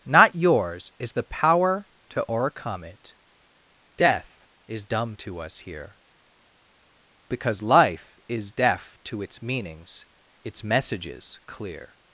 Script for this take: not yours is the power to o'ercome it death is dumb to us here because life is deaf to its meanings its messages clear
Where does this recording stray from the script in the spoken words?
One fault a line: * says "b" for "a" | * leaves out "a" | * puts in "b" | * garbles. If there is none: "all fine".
all fine